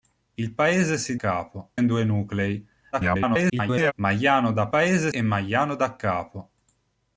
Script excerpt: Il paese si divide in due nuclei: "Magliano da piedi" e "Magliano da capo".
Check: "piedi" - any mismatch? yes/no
yes